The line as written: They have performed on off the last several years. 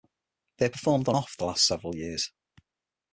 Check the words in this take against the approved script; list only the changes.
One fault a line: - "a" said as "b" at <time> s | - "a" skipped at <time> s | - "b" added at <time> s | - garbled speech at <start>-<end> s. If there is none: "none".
none